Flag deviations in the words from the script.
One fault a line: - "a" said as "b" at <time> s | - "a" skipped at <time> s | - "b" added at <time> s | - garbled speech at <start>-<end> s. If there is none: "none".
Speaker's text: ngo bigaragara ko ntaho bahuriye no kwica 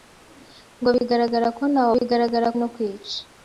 - "bahuriye" said as "bigaragara" at 2.0 s